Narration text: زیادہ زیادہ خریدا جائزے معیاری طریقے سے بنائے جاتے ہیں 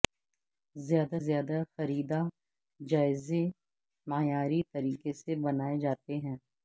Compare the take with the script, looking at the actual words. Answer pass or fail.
pass